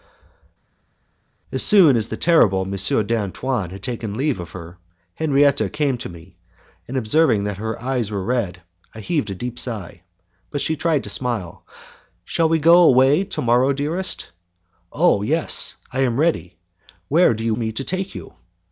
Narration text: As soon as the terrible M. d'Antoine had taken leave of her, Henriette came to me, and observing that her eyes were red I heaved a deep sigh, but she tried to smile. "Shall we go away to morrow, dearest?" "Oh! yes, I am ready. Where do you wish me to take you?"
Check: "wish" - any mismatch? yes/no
yes